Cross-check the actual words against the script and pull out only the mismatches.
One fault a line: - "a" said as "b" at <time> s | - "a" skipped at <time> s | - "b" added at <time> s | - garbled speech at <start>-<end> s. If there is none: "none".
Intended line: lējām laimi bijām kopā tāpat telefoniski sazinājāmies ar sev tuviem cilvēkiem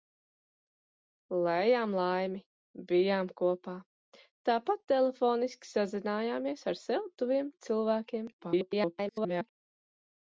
- garbled speech at 8.4-9.5 s